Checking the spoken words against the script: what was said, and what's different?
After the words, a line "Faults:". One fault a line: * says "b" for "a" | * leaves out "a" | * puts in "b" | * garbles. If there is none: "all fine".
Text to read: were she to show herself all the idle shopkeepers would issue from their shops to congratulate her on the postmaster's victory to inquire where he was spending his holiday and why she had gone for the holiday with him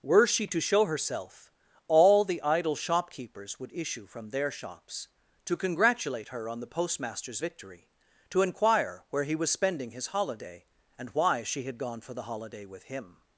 were she to show herself all the idle shopkeepers would issue from their shops to congratulate her on the postmaster's victory to inquire where he was spending his holiday and why she had gone for the holiday with him
Faults:
all fine